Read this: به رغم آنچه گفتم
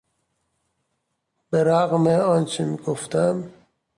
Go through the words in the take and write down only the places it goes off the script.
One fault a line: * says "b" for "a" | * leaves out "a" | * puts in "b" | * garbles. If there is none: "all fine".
all fine